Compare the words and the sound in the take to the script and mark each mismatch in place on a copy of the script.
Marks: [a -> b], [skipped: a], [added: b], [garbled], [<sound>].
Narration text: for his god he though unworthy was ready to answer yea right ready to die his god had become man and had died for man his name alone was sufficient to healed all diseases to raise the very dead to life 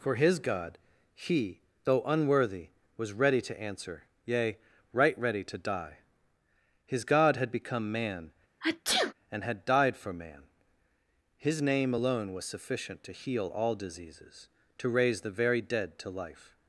for his god he though unworthy was ready to answer yea right ready to die his god had become man [sneeze] and had died for man his name alone was sufficient to [healed -> heal] all diseases to raise the very dead to life